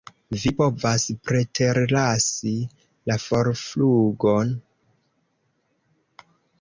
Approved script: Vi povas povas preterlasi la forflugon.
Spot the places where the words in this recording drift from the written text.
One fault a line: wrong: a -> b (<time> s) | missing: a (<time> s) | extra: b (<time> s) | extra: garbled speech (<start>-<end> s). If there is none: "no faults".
missing: povas (1.0 s)